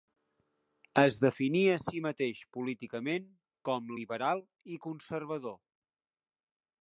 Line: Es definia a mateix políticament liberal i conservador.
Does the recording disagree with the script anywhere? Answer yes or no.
yes